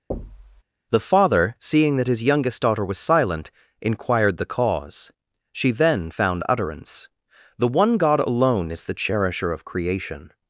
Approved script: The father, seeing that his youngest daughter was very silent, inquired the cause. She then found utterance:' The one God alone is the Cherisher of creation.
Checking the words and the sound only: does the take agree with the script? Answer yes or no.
no